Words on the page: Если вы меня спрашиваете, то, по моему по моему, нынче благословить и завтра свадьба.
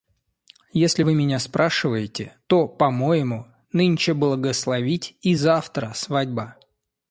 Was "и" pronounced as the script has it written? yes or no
yes